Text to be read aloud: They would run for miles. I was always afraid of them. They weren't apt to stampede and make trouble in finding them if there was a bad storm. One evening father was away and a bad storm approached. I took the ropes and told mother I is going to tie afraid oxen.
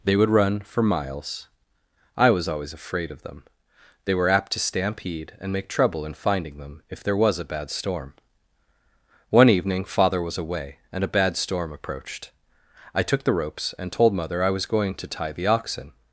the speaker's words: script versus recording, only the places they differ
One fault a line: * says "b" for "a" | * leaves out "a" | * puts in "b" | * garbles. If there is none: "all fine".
* says "were" for "weren't"
* says "was" for "is"
* says "the" for "afraid"